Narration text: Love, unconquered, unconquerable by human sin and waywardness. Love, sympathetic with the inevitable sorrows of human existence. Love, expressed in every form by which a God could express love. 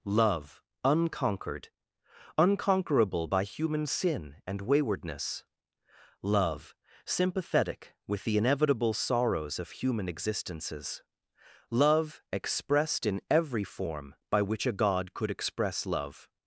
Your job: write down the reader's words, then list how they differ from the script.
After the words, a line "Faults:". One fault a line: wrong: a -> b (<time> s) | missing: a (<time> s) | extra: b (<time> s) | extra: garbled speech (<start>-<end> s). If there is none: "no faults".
Love, unconquered, unconquerable by human sin and waywardness. Love, sympathetic with the inevitable sorrows of human existences. Love, expressed in every form by which a God could express love.
Faults:
wrong: existence -> existences (10.1 s)